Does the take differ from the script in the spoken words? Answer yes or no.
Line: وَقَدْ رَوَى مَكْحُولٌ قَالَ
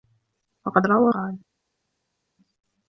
yes